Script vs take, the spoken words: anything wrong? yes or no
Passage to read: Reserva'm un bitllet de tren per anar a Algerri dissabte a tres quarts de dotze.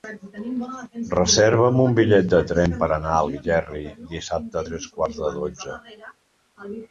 no